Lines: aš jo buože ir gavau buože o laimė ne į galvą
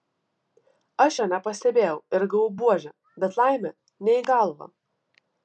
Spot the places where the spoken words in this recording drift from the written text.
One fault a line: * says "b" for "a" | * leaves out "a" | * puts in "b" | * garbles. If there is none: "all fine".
* says "nepastebėjau" for "buože"
* says "bet" for "o"